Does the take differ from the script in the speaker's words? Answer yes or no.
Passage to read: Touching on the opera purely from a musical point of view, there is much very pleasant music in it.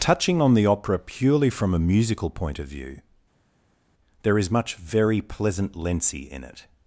yes